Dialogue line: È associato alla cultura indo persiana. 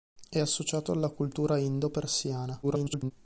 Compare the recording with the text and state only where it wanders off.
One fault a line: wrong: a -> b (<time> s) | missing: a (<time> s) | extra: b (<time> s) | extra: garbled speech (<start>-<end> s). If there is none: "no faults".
extra: garbled speech (2.6-3.1 s)